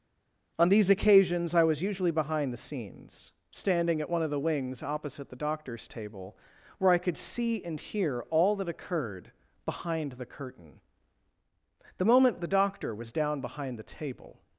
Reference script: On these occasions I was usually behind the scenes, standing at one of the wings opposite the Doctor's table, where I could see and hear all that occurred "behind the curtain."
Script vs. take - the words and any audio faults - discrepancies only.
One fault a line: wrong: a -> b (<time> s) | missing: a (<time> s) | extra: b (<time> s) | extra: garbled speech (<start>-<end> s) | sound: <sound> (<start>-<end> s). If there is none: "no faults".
extra: The moment the Doctor was down behind the table (12.0 s)